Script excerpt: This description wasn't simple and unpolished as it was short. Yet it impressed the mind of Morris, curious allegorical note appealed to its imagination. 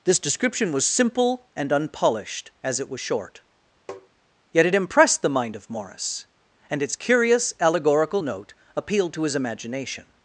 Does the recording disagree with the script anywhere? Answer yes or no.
yes